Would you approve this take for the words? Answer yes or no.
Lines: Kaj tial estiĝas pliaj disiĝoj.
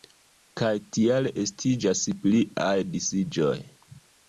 yes